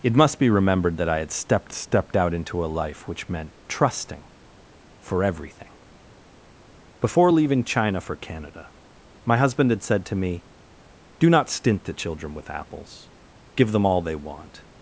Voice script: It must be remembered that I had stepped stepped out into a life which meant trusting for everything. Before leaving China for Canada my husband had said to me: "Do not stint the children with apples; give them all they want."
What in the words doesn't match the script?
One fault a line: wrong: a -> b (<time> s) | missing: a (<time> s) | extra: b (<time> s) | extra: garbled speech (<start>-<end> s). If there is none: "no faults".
no faults